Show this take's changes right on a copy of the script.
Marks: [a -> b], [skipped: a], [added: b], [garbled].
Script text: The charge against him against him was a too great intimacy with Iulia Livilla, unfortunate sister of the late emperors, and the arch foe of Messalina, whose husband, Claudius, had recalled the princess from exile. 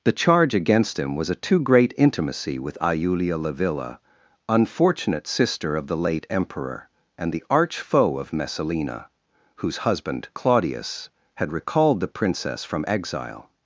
The charge against him [skipped: against him] was a too great intimacy with Iulia Livilla, unfortunate sister of the late [emperors, -> emperor] and the arch foe of Messalina, whose husband, Claudius, had recalled the princess from exile.